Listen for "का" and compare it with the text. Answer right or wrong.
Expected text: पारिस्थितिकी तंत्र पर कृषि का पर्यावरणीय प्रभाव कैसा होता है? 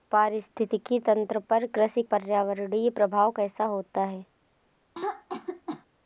wrong